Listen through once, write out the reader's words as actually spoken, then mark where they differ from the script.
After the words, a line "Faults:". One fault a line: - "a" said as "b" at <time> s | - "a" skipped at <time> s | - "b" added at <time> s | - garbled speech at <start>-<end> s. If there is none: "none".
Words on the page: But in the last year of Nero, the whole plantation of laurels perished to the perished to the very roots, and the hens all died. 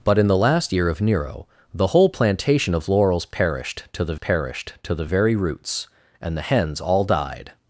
But in the last year of Nero, the whole plantation of laurels perished to the perished to the very roots, and the hens all died.
Faults:
none